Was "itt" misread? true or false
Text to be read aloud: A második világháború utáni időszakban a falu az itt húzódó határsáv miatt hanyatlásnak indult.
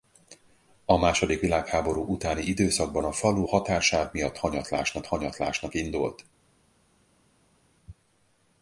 true